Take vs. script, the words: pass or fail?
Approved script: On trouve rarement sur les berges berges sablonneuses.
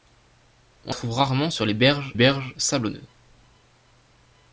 pass